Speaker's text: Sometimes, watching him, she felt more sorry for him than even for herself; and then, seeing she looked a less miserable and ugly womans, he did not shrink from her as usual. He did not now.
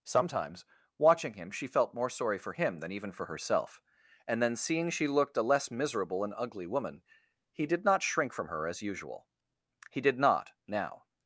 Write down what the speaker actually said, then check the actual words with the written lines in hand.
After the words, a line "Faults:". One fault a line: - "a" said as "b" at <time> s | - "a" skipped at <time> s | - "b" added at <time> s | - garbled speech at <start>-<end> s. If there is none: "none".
Sometimes, watching him, she felt more sorry for him than even for herself; and then, seeing she looked a less miserable and ugly woman, he did not shrink from her as usual. He did not now.
Faults:
- "womans" said as "woman" at 6.7 s